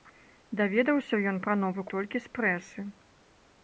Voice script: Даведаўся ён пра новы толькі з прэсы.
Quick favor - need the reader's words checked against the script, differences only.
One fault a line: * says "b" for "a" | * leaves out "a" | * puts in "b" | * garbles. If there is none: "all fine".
all fine